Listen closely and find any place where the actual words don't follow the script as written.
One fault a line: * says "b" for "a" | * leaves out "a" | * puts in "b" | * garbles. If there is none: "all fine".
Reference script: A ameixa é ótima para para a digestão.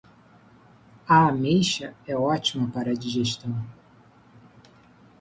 * leaves out "para"